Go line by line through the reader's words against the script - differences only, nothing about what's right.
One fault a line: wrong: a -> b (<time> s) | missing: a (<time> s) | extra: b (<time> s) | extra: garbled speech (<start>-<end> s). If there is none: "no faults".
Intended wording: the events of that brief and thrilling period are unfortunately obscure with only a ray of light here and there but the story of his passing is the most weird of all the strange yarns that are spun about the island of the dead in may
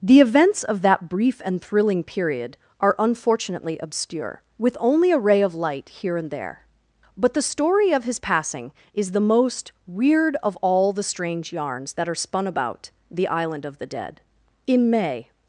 no faults